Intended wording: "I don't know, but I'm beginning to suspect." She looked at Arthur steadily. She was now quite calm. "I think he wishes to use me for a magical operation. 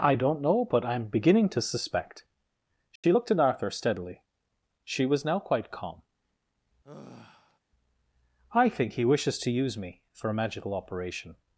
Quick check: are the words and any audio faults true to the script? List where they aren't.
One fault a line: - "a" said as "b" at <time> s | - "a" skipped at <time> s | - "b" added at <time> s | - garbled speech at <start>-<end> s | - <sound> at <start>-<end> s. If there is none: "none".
- dropout at 3.0-3.0 s
- sigh at 6.8-7.6 s